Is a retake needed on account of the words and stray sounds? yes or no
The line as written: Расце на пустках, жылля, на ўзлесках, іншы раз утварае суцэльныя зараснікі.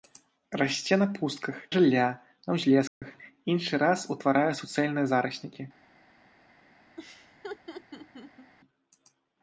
yes